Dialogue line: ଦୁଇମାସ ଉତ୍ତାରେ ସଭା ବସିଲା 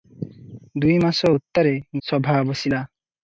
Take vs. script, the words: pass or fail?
pass